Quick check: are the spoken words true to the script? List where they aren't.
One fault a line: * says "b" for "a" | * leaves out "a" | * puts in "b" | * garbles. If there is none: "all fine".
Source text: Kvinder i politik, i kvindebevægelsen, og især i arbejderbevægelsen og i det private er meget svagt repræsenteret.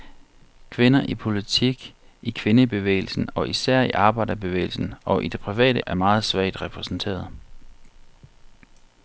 all fine